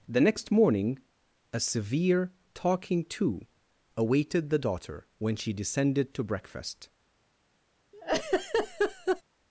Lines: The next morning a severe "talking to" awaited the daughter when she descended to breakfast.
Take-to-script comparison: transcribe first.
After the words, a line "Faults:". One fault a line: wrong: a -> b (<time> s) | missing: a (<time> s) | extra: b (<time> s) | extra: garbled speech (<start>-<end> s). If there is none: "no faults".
The next morning a severe "talking to" awaited the daughter when she descended to breakfast.
Faults:
no faults